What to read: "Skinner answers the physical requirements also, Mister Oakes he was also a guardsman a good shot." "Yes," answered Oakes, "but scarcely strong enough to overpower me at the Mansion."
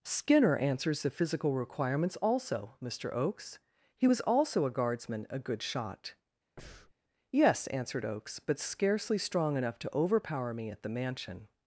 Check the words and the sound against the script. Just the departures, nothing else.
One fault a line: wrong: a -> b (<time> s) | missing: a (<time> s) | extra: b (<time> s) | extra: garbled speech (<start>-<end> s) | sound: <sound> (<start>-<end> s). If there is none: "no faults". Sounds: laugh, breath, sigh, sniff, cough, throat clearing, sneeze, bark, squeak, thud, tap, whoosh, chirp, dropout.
sound: breath (6.6-6.9 s)